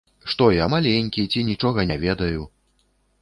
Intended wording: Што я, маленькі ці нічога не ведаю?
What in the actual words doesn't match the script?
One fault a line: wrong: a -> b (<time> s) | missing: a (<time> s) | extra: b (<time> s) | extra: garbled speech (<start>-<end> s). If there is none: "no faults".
no faults